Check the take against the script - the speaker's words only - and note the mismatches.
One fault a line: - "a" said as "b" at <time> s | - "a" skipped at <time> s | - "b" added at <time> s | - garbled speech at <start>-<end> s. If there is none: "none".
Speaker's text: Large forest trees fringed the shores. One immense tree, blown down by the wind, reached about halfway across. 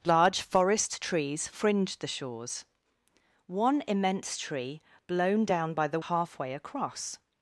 - "wind reached about" skipped at 6.0 s